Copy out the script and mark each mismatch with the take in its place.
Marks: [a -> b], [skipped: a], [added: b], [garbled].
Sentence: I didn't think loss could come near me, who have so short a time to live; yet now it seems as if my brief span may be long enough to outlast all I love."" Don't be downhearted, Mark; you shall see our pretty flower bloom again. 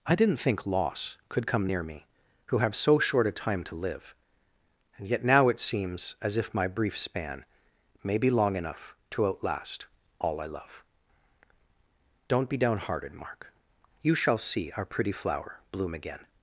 I didn't think loss could come near me, who have so short a time to live; [added: and] yet now it seems as if my brief span may be long enough to outlast all I love."" Don't be downhearted, Mark; you shall see our pretty flower bloom again.